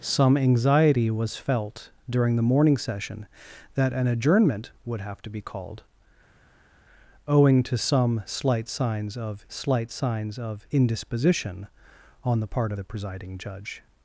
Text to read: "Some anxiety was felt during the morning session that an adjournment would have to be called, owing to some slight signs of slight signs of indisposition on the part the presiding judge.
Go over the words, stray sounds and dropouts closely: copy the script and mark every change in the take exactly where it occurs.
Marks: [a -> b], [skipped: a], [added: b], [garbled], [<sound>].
"Some anxiety was felt during the morning session that an adjournment would have to be called, owing to some slight signs of slight signs of indisposition on the part the presiding judge.